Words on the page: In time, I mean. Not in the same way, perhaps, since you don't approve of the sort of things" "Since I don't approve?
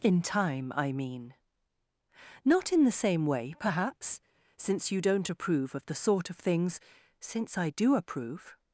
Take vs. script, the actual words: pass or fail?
fail